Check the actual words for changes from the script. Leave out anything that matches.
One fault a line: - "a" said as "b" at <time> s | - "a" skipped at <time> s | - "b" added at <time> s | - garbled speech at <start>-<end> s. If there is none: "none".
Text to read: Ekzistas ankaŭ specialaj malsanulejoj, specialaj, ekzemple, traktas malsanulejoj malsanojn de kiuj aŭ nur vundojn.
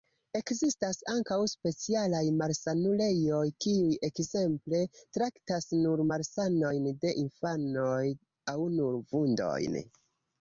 - "specialaj" said as "kiuj" at 3.6 s
- "malsanulejoj" said as "nur" at 5.8 s
- "kiuj" said as "infanoj" at 7.3 s